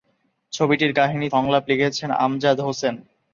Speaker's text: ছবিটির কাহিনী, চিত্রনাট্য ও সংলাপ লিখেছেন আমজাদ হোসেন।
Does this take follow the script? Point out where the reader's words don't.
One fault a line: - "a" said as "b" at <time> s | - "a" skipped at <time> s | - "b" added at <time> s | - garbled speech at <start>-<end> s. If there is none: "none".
- "চিত্রনাট্য ও" skipped at 1.3 s